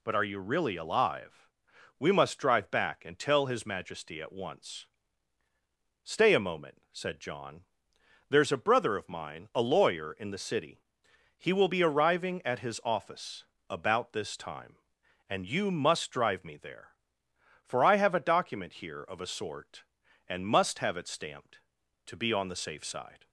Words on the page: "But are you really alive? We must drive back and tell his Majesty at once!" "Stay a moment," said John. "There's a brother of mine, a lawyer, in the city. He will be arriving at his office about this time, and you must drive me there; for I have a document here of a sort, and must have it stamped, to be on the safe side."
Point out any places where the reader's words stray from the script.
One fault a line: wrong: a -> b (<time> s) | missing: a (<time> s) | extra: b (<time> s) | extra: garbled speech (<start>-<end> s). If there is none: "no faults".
no faults